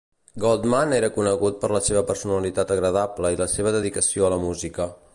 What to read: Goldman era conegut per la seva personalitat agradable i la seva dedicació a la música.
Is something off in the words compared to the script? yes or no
no